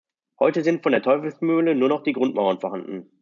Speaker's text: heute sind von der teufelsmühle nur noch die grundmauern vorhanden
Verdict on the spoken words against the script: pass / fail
pass